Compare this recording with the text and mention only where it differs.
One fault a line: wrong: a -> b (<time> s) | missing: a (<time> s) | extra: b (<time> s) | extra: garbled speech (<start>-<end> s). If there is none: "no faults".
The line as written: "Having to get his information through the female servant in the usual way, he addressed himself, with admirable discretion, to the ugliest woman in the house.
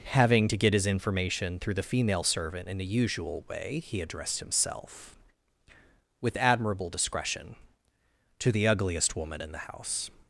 no faults